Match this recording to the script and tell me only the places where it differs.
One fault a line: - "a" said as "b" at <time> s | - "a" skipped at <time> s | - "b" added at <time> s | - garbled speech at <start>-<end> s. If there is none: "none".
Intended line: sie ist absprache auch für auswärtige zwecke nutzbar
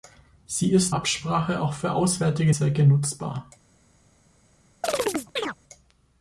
none